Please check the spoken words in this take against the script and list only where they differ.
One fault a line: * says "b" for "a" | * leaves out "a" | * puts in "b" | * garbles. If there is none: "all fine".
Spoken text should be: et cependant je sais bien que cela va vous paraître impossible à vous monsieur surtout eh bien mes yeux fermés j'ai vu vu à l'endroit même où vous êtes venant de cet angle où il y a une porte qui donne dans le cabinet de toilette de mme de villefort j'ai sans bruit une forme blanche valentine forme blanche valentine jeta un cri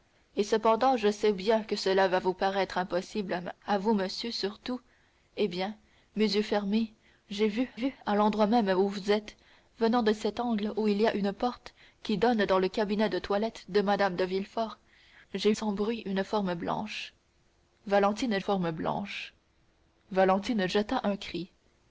all fine